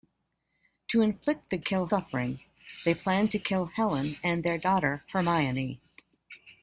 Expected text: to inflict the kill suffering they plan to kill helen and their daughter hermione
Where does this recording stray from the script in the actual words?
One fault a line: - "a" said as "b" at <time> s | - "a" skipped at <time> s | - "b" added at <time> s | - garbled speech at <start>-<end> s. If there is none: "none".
none